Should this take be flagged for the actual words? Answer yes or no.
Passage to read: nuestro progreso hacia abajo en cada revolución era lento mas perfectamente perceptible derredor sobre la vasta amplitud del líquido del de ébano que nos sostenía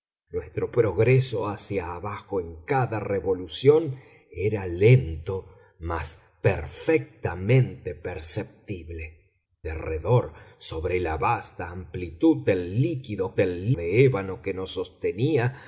no